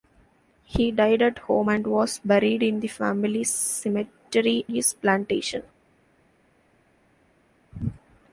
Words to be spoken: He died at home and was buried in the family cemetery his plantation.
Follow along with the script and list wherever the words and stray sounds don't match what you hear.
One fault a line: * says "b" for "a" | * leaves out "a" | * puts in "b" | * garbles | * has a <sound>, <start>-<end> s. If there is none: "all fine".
all fine